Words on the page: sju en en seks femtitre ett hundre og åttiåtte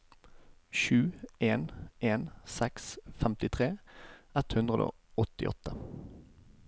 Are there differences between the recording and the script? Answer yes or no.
no